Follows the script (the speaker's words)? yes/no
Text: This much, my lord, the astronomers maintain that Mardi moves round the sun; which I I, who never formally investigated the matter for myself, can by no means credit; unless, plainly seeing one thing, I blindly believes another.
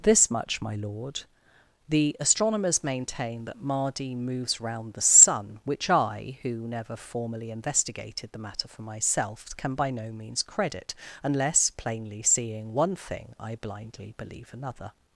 no